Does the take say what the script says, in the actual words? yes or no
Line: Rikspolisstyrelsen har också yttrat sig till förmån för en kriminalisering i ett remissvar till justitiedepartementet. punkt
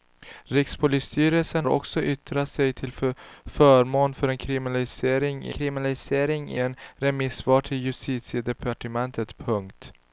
no